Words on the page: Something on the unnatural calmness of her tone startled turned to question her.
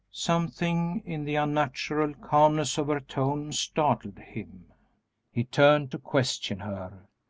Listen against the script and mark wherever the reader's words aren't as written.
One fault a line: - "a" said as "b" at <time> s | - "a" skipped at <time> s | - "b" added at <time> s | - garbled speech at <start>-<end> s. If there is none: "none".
- "on" said as "in" at 1.1 s
- "him he" added at 4.2 s